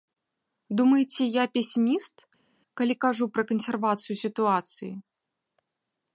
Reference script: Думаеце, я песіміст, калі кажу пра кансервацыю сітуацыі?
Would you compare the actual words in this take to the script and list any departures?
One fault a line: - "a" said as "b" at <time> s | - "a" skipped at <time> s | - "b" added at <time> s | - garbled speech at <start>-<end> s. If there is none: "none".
none